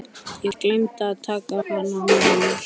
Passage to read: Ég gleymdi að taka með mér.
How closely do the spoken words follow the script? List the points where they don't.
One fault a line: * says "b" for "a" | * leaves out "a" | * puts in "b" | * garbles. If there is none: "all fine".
all fine